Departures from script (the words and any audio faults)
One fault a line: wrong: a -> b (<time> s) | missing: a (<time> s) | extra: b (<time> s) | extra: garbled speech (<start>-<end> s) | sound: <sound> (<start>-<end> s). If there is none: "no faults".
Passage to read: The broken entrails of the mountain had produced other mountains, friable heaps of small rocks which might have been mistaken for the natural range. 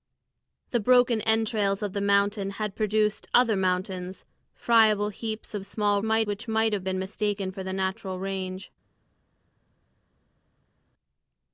wrong: rocks -> might (6.0 s)